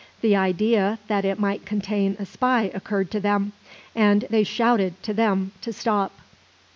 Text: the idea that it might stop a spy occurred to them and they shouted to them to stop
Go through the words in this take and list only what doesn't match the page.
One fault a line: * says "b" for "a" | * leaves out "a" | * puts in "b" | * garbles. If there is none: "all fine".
* says "contain" for "stop"